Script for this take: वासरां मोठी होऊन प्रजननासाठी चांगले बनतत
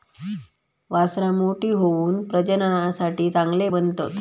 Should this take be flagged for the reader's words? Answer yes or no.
no